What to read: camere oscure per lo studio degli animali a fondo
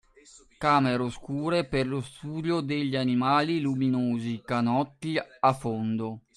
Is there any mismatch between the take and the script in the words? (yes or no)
yes